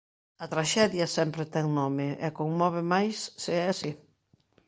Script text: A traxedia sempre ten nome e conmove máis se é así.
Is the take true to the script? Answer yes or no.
yes